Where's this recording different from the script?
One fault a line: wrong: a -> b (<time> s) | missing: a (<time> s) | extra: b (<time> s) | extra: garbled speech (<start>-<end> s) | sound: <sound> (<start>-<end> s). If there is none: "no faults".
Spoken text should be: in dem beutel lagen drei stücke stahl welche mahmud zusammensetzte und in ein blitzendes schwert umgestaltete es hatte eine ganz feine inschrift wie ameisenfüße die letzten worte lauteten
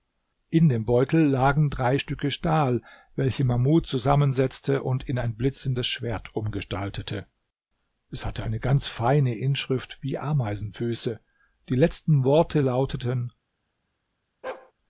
sound: bark (14.4-14.7 s)